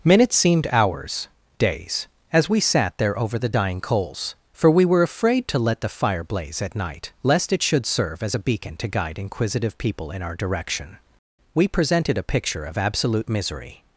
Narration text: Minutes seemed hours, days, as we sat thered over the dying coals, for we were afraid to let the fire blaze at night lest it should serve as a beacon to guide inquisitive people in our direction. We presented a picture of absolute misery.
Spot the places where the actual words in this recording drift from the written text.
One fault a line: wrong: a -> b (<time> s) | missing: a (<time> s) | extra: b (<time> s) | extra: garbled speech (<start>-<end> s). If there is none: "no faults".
wrong: thered -> there (3.0 s)